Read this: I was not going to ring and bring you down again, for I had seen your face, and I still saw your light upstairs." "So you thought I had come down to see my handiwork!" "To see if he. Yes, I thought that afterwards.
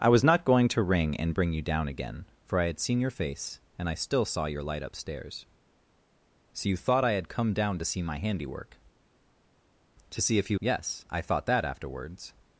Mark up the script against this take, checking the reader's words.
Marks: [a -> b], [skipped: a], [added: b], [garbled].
I was not going to ring and bring you down again, for I had seen your face, and I still saw your light upstairs." "So you thought I had come down to see my handiwork!" "To see if he. Yes, I thought that afterwards.